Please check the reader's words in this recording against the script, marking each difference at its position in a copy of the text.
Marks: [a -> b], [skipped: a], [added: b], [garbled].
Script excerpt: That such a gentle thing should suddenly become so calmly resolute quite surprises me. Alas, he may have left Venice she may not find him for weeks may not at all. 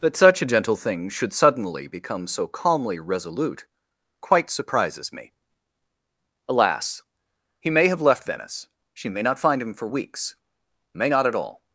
That such a gentle thing should suddenly become so calmly resolute quite surprises me. Alas, he may have left Venice she may not find him for weeks may not at all.